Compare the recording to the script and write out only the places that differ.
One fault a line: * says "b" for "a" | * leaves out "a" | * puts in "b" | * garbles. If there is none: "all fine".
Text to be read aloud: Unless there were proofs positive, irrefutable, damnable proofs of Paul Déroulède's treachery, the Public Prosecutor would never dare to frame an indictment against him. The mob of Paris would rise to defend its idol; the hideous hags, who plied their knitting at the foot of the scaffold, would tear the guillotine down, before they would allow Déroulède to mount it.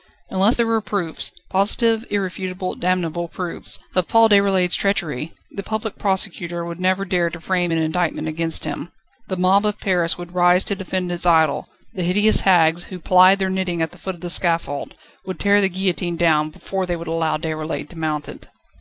all fine